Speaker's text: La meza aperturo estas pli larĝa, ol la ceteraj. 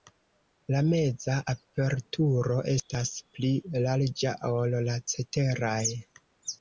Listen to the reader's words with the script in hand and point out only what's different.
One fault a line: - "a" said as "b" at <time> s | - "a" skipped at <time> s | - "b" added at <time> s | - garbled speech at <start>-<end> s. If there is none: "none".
none